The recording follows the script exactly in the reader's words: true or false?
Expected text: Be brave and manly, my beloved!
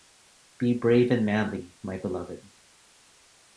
true